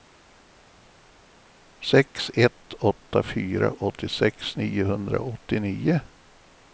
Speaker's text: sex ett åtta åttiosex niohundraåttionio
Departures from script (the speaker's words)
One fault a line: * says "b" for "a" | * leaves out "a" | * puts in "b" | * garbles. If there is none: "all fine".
* puts in "fyra"